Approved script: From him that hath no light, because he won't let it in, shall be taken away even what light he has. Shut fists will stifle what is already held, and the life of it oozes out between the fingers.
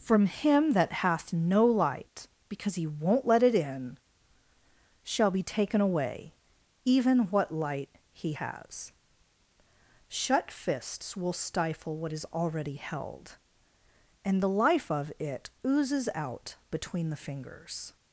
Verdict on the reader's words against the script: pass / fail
pass